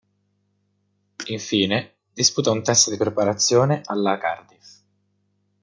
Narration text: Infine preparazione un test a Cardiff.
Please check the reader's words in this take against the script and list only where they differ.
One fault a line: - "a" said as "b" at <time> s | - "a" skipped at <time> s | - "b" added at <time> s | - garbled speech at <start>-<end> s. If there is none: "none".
- "preparazione" said as "disputa" at 2.1 s
- "di preparazione alla" added at 2.9 s